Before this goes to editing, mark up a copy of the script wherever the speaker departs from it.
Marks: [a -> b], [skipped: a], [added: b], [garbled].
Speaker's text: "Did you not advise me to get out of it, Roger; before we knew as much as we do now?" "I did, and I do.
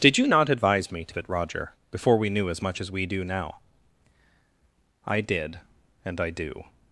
"Did you not advise me to [skipped: get out] of it, Roger; before we knew as much as we do now?" "I did, and I do.